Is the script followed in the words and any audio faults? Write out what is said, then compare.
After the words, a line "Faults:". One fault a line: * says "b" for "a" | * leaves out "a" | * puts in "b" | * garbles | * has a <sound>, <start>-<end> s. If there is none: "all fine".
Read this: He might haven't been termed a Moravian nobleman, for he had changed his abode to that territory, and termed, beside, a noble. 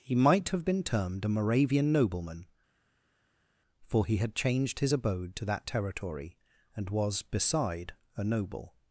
He might have been termed a Moravian nobleman, for he had changed his abode to that territory, and was, beside, a noble.
Faults:
* says "have" for "haven't"
* says "was" for "termed"